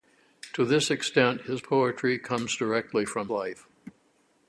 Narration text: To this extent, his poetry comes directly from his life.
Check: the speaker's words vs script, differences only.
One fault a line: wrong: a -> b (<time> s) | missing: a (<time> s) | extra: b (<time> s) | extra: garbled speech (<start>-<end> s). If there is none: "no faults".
missing: his (3.3 s)